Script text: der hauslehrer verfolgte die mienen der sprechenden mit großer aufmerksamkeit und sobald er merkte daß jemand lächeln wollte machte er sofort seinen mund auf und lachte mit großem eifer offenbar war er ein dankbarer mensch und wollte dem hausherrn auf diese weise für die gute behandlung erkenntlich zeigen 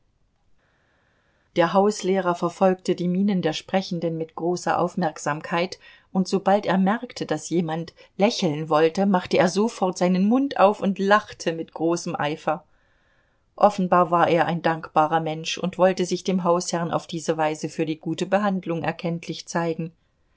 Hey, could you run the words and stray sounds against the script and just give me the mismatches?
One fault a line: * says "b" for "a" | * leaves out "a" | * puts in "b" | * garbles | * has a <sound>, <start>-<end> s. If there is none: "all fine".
* puts in "sich"